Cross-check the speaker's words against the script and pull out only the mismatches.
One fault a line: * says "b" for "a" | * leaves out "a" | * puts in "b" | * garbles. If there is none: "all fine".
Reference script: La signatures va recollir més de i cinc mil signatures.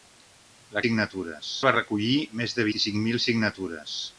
all fine